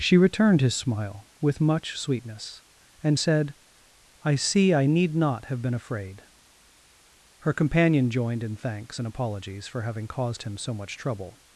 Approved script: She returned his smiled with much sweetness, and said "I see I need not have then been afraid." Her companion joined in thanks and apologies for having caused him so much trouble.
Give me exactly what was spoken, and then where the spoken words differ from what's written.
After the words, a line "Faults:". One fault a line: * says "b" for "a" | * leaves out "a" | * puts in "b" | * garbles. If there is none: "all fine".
She returned his smile with much sweetness, and said "I see I need not have been afraid." Her companion joined in thanks and apologies for having caused him so much trouble.
Faults:
* says "smile" for "smiled"
* leaves out "then"